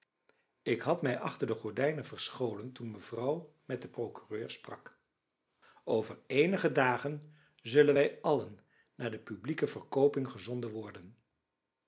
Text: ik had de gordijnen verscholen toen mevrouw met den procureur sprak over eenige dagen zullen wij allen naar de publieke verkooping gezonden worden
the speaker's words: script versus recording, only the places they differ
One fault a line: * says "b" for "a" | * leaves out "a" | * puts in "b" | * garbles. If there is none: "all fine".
* puts in "mij achter"